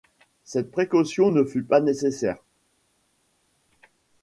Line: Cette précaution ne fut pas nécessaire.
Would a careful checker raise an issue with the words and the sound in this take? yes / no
no